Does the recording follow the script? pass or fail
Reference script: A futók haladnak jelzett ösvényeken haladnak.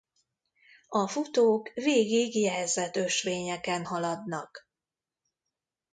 fail